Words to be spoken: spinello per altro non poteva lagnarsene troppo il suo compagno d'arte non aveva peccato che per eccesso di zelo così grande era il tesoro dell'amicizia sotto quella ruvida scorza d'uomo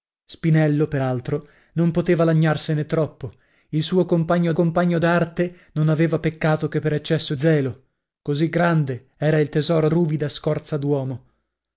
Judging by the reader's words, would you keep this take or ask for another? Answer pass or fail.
fail